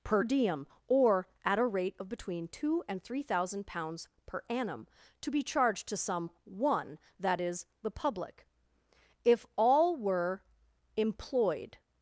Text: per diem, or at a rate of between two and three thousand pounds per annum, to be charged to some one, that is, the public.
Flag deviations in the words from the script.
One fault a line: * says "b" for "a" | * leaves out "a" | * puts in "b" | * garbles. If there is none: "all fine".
* puts in "If all were employed"